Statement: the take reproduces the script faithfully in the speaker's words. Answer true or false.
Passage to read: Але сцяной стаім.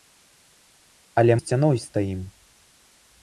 true